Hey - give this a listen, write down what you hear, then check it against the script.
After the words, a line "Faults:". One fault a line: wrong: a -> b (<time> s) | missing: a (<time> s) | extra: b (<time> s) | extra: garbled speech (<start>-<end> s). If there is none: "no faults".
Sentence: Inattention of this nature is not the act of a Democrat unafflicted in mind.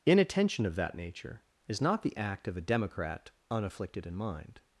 Inattention of that nature is not the act of a Democrat unafflicted in mind.
Faults:
wrong: this -> that (0.8 s)